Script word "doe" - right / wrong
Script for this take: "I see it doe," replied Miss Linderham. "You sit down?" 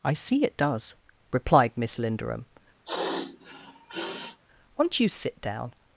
wrong